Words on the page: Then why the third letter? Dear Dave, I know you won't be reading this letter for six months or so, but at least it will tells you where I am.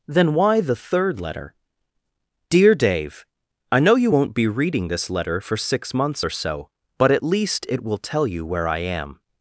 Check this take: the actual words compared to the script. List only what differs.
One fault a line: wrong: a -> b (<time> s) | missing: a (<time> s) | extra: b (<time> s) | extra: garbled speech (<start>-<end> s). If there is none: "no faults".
wrong: tells -> tell (8.0 s)